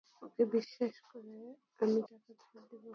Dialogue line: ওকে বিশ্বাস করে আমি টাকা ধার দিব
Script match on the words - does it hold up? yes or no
yes